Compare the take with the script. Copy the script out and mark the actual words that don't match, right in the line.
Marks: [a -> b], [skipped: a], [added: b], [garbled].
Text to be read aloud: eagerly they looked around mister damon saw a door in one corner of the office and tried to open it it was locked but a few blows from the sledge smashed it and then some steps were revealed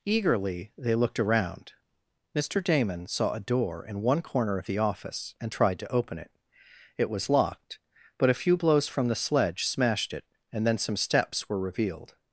eagerly they looked around mister damon saw a door in one corner of the office and tried to open it it was locked but a few blows from the sledge smashed it and then some steps were revealed